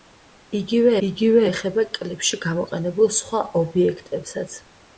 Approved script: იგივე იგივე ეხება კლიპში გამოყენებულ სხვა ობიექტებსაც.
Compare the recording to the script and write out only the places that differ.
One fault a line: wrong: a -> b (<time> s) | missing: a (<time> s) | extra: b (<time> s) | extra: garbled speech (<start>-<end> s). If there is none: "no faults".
no faults